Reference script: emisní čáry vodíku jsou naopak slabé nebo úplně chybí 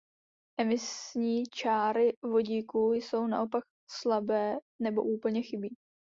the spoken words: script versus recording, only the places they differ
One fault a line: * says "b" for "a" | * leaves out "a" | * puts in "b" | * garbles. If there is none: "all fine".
all fine